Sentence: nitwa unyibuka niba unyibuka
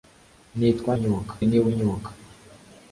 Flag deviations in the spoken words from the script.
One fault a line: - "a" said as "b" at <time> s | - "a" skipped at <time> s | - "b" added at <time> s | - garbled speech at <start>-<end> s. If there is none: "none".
none